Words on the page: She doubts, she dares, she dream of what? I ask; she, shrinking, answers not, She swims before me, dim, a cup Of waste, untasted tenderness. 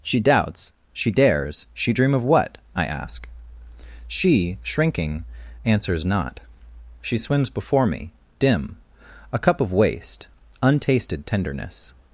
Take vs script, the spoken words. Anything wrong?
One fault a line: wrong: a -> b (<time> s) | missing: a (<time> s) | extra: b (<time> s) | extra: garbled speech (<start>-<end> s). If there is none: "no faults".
no faults